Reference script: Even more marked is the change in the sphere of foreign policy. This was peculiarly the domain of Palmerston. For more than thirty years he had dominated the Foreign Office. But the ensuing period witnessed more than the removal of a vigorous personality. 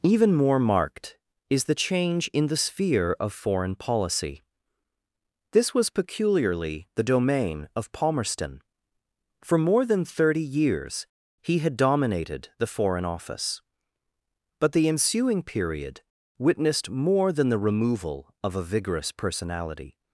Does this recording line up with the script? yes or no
yes